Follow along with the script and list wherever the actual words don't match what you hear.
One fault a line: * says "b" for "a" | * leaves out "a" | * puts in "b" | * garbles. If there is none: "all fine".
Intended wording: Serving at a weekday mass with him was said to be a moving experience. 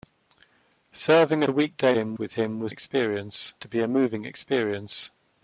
* leaves out "at"
* says "him" for "mass"
* says "experience" for "said"